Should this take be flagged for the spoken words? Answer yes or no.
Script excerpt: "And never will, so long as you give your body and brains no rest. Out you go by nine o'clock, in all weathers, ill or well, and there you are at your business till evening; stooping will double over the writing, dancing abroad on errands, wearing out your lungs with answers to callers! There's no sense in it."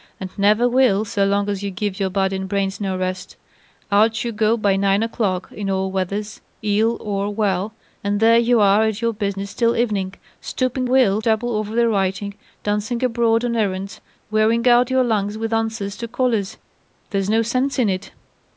no